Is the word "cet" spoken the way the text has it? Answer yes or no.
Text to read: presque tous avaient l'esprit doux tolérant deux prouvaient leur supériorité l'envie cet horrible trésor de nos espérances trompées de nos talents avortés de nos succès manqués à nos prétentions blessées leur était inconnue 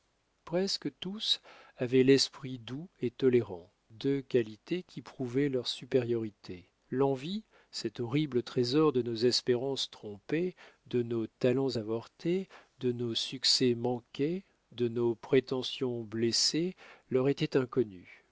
yes